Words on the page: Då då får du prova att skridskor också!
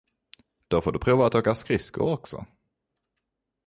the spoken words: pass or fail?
fail